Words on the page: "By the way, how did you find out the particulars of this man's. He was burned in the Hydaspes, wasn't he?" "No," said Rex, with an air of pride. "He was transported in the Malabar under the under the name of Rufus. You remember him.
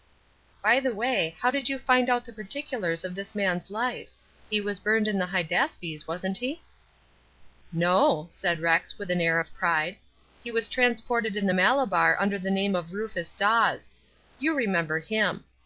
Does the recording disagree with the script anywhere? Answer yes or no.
yes